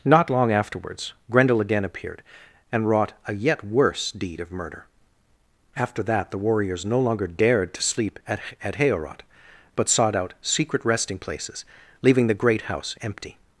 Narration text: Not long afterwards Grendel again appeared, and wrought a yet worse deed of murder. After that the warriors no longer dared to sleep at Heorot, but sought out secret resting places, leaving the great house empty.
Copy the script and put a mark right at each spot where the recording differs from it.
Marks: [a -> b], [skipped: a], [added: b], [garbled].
Not long afterwards Grendel again appeared, and wrought a yet worse deed of murder. After that the warriors no longer dared to sleep at [added: at] Heorot, but sought out secret resting places, leaving the great house empty.